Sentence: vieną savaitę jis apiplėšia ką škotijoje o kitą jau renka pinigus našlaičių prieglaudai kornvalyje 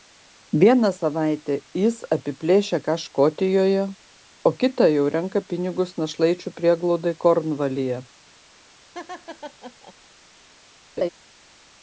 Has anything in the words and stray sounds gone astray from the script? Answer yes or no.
yes